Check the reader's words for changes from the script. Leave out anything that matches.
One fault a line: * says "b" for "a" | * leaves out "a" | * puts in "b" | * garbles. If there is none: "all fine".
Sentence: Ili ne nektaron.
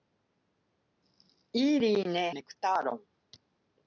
all fine